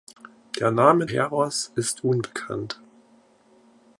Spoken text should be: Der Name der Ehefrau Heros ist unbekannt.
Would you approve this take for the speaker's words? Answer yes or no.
no